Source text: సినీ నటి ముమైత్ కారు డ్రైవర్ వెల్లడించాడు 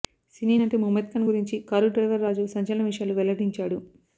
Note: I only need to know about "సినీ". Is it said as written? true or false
true